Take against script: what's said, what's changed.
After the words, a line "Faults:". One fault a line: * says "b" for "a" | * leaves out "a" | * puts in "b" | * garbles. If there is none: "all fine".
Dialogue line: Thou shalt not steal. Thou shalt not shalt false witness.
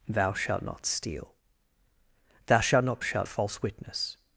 Thou shalt not steal. Thou shalt not shalt false witness.
Faults:
all fine